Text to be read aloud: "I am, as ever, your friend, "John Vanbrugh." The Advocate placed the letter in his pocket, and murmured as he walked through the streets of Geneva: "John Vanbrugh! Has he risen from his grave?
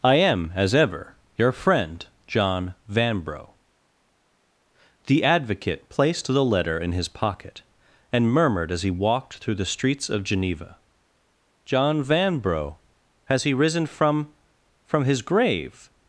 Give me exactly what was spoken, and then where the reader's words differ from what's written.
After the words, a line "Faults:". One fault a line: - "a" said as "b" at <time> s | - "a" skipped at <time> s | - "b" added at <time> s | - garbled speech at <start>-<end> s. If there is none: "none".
"I am, as ever, your friend, "John Vanbrugh." The Advocate placed the letter in his pocket, and murmured as he walked through the streets of Geneva: "John Vanbrugh! Has he risen from from his grave?
Faults:
- "from" added at 14.9 s